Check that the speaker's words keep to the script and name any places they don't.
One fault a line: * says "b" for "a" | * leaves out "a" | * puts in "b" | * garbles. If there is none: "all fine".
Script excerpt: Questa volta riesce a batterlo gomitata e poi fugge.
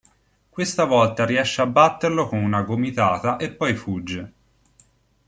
* puts in "con una"